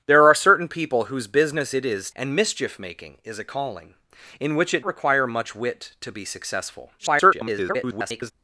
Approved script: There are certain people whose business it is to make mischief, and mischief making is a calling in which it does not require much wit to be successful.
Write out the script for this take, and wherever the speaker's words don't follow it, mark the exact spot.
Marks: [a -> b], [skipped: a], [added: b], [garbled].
There are certain people whose business it is [skipped: to make mischief,] and mischief making is a calling in which it [skipped: does not] require much wit to be successful. [garbled]